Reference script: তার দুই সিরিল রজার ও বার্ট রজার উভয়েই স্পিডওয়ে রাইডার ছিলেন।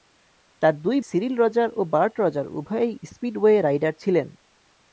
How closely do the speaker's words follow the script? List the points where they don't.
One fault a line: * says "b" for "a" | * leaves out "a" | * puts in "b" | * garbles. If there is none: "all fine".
all fine